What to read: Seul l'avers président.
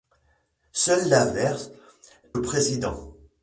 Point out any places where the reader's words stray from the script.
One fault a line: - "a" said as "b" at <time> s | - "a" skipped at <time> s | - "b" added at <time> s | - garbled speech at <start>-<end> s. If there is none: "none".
none